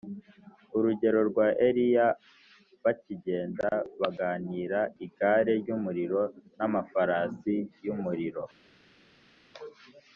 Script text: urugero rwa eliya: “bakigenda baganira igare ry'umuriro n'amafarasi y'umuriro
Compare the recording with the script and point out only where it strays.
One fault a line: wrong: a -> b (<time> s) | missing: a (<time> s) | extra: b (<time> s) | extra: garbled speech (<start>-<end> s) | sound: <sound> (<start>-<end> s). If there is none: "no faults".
no faults